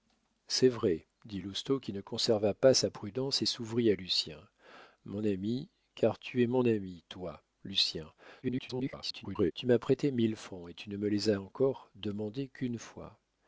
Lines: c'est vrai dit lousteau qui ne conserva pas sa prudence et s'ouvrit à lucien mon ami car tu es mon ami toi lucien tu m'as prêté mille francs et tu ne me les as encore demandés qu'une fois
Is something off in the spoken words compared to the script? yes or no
yes